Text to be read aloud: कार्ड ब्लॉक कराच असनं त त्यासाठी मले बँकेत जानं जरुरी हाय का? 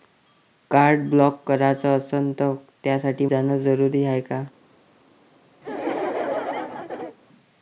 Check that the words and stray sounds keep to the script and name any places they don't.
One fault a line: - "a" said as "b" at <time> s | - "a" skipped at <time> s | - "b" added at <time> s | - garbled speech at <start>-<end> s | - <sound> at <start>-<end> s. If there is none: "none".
- "मले बँकेत" skipped at 3.2 s
- laugh at 5.6-7.2 s